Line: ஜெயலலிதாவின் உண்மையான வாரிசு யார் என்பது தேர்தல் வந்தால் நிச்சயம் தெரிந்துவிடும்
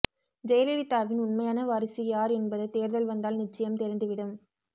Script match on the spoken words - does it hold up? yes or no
yes